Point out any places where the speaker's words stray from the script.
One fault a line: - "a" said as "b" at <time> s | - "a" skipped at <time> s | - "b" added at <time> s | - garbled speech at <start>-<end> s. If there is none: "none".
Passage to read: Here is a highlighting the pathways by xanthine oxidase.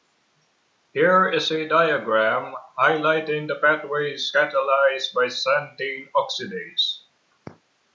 - "diagram" added at 1.7 s
- "catalyzed" added at 4.3 s